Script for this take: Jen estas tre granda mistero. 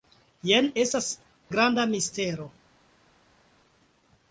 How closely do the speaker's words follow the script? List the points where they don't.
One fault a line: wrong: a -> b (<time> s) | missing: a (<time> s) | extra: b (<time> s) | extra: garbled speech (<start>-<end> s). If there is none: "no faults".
missing: tre (1.1 s)